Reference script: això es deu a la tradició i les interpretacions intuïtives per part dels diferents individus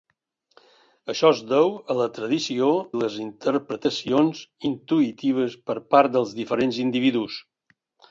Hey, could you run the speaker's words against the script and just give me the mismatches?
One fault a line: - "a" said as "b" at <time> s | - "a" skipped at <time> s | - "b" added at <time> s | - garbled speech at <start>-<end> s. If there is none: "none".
- "i" skipped at 2.7 s